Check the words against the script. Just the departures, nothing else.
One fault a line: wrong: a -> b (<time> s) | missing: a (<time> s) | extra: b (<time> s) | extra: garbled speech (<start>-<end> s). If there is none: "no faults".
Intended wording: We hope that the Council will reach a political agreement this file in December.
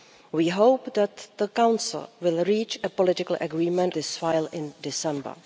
no faults